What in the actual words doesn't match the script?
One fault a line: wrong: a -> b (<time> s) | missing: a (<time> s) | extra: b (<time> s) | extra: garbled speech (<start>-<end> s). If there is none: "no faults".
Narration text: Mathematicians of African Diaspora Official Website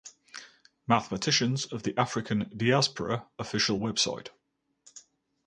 extra: the (1.8 s)